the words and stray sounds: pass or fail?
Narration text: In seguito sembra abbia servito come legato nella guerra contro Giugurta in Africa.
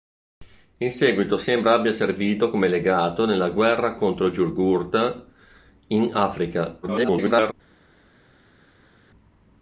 fail